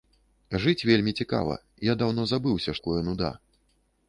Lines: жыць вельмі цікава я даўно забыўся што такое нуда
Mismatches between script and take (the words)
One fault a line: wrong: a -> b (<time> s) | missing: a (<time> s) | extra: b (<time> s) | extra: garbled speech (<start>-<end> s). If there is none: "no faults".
missing: што (2.7 s)